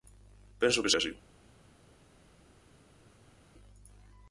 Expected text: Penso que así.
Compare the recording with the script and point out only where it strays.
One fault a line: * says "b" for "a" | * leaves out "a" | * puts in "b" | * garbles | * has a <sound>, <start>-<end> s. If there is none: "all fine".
all fine